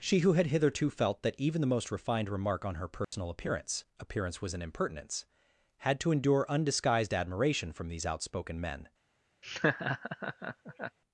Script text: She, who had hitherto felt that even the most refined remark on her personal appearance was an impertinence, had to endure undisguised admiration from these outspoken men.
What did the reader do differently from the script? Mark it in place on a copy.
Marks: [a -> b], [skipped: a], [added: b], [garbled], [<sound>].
She, who had hitherto felt that even the most refined remark on her personal [dropout] appearance [added: appearance] was an impertinence, had to endure undisguised admiration from these outspoken men. [laugh]